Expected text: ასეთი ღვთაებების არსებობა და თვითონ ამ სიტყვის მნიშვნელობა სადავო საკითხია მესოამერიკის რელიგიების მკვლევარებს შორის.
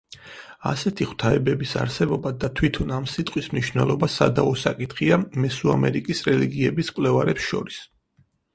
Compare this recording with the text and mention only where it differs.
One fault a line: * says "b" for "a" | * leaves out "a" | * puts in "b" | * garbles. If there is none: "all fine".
all fine